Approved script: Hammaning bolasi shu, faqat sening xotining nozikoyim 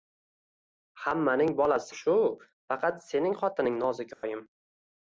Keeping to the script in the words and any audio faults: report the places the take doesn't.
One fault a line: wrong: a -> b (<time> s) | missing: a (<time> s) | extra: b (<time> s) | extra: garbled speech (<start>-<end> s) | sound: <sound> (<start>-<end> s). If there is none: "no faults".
sound: dropout (4.1-4.2 s)